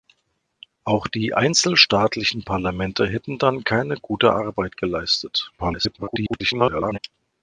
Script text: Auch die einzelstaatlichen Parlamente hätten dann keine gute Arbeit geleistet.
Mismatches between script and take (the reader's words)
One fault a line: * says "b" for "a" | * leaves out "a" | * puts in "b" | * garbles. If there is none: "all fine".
* garbles